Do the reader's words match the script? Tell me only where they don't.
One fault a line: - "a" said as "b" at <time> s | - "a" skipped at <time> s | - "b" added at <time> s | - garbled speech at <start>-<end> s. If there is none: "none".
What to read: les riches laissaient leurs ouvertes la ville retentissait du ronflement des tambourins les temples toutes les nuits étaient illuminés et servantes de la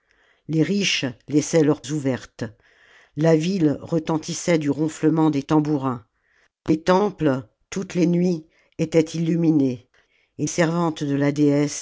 none